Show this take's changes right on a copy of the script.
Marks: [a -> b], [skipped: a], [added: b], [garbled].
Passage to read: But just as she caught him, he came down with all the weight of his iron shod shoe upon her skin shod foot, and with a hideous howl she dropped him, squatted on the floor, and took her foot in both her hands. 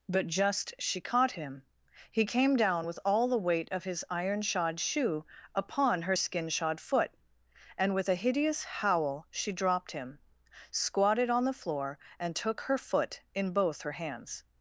But just [skipped: as] she caught him, he came down with all the weight of his iron shod shoe upon her skin shod foot, and with a hideous howl she dropped him, squatted on the floor, and took her foot in both her hands.